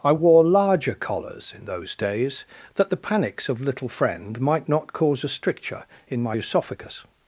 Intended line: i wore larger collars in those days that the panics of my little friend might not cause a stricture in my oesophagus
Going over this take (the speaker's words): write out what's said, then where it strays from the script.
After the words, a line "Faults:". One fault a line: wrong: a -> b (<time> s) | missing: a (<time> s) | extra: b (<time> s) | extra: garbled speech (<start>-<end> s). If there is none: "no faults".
i wore larger collars in those days that the panics of little friend might not cause a stricture in my oesophagus
Faults:
missing: my (3.6 s)